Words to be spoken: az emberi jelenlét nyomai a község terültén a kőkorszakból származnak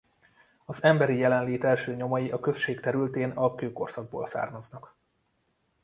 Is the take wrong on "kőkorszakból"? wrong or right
right